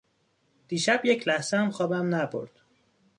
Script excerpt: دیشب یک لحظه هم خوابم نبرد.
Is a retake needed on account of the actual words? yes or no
no